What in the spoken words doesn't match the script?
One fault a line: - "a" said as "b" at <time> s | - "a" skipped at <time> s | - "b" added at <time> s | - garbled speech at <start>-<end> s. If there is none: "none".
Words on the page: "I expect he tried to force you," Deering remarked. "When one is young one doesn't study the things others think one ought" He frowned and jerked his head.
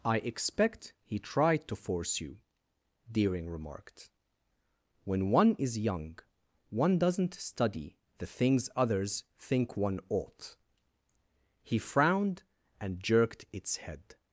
- "his" said as "its" at 13.5 s